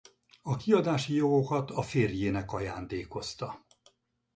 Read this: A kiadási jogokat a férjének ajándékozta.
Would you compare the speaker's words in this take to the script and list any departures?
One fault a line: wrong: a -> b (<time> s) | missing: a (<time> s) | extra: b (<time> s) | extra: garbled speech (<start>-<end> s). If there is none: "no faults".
no faults